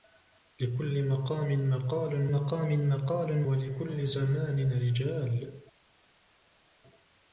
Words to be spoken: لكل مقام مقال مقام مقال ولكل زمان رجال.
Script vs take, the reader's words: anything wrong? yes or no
no